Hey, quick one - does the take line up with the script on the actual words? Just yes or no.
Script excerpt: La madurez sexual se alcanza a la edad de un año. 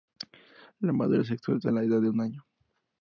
no